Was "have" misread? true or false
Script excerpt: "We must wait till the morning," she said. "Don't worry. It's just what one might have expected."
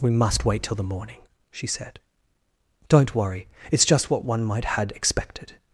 true